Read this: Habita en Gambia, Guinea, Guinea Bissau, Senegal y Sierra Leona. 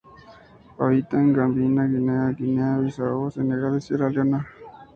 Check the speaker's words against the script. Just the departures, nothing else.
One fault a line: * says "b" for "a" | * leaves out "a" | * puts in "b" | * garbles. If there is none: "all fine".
all fine